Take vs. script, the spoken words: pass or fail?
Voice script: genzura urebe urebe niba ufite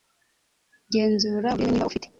fail